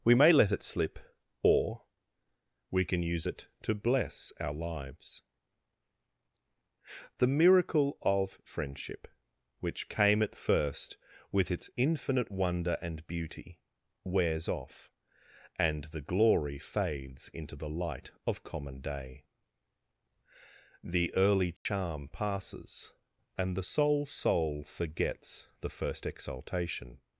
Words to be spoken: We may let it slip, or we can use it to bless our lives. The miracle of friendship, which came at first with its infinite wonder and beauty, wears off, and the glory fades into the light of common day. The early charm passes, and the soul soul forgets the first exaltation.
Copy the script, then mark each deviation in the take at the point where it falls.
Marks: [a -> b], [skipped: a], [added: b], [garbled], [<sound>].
We may let it slip, or we can use it to bless our lives. The miracle of friendship, which came at first with its infinite wonder and beauty, wears off, and the glory fades into the light of common day. The early charm [dropout] passes, and the soul soul forgets the first exaltation.